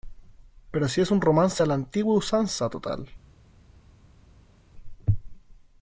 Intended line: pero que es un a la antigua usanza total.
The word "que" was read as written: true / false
false